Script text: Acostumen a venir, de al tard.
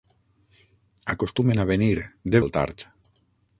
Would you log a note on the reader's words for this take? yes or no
no